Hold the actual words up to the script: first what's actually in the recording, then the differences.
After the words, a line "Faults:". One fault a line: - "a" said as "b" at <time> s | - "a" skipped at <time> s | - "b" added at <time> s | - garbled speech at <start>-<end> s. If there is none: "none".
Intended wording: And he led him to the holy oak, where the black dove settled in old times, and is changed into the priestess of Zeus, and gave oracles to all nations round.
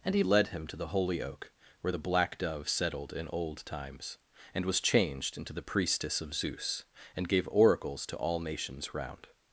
And he led him to the holy oak, where the black dove settled in old times, and was changed into the priestess of Zeus, and gave oracles to all nations round.
Faults:
- "is" said as "was" at 4.6 s